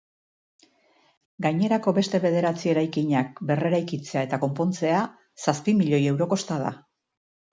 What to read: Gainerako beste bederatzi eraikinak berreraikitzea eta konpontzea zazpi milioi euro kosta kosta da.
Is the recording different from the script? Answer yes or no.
yes